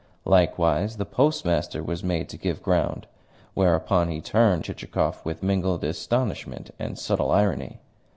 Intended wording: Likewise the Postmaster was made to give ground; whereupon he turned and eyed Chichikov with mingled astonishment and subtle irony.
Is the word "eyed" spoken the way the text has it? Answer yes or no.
no